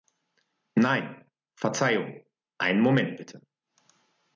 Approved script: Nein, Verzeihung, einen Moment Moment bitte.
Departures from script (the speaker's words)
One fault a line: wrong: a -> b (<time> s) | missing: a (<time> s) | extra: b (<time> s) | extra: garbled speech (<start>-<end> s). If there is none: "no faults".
missing: Moment (3.2 s)